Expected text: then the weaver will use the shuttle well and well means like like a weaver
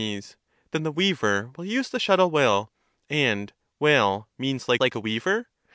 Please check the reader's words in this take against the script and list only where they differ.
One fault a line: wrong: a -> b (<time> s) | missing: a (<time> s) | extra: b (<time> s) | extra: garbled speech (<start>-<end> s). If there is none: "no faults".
no faults